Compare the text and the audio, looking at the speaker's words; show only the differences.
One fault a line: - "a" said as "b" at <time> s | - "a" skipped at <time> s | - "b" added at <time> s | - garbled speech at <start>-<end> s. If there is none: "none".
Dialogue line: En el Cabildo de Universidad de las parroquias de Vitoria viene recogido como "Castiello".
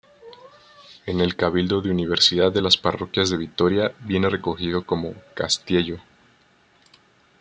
none